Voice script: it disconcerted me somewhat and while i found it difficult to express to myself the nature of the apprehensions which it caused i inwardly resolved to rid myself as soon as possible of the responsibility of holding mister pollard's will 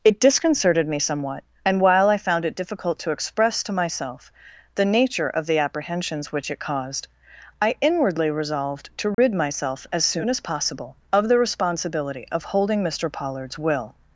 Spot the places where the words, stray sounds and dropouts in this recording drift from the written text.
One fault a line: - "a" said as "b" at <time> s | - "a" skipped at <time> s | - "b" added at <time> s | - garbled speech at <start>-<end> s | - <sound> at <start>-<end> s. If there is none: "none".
- dropout at 9.1-9.2 s